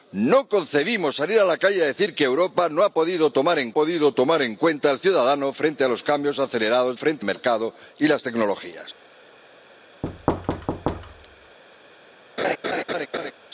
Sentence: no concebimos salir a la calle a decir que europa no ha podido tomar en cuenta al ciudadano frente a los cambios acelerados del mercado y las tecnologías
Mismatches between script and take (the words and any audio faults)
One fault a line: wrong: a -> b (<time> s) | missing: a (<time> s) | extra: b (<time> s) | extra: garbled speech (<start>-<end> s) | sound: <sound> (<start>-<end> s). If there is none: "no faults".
extra: podido tomar en (3.7 s)
wrong: del -> frente (6.9 s)
sound: thud (10.0-11.6 s)
sound: laugh (12.4-13.3 s)